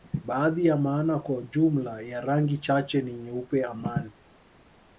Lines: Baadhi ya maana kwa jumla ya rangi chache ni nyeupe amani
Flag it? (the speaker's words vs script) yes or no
no